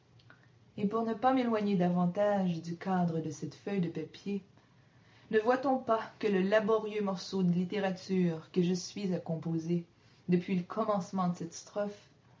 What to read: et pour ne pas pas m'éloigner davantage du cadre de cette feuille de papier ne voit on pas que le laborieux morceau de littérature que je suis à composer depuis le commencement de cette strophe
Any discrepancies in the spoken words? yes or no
yes